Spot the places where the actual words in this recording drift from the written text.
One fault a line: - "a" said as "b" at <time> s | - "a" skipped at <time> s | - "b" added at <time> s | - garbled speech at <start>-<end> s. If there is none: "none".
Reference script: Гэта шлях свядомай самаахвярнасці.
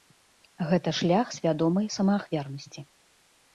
none